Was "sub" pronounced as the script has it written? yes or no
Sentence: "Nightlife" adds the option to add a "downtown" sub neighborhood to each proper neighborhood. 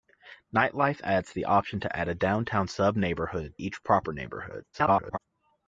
yes